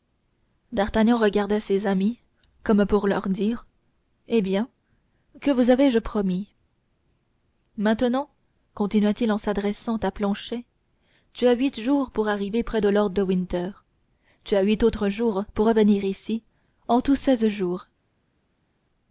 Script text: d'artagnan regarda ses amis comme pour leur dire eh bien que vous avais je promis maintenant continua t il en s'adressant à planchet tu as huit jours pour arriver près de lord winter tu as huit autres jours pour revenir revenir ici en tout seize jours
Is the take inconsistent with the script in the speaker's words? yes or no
yes